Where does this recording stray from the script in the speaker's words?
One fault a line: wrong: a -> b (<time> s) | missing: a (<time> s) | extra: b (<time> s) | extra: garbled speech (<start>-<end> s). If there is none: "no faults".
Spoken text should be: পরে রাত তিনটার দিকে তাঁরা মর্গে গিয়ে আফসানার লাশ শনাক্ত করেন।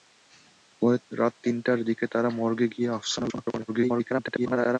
missing: লাশ (3.3 s)
extra: garbled speech (3.7-4.8 s)